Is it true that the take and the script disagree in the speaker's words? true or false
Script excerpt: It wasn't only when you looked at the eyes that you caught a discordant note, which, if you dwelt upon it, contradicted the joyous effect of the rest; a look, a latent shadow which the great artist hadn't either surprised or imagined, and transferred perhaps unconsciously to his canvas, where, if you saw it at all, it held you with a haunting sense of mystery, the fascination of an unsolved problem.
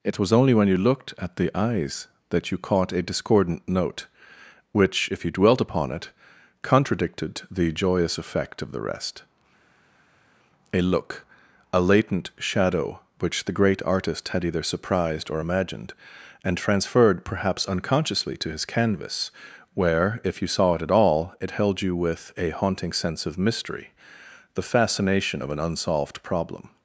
true